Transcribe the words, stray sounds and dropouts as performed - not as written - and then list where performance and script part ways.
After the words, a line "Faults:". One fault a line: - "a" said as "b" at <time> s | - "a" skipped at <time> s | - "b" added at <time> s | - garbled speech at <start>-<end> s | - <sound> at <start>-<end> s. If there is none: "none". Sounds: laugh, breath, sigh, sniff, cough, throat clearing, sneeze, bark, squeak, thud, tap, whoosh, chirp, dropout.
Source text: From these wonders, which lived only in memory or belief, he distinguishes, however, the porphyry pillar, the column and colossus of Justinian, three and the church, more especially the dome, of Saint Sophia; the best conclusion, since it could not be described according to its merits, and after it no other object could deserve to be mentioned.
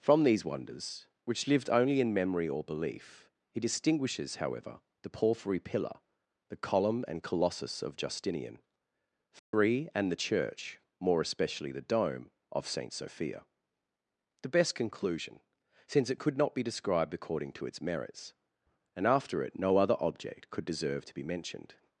From these wonders, which lived only in memory or belief, he distinguishes, however, the porphyry pillar, the column and colossus of Justinian, three and the church, more especially the dome, of Saint Sophia; the best conclusion, since it could not be described according to its merits, and after it no other object could deserve to be mentioned.
Faults:
- dropout at 9.4-9.5 s